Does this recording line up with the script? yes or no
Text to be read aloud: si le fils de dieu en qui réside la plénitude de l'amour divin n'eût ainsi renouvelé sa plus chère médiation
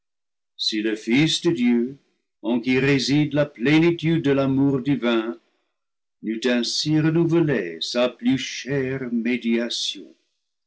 yes